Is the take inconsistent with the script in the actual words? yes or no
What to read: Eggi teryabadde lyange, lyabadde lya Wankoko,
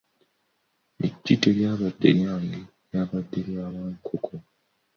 no